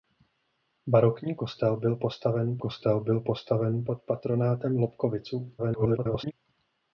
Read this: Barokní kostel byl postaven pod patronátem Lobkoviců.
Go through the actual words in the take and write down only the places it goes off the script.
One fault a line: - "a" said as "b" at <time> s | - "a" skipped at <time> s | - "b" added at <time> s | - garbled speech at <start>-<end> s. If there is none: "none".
- "kostel byl postaven" added at 2.6 s
- garbled speech at 5.6-6.3 s